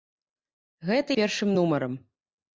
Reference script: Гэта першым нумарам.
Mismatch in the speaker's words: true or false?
false